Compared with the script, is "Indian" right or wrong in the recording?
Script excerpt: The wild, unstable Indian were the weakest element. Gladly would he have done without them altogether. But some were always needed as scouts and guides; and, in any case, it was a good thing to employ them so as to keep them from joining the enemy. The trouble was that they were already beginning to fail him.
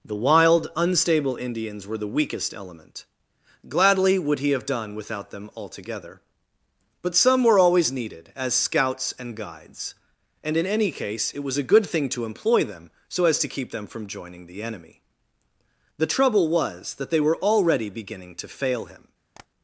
wrong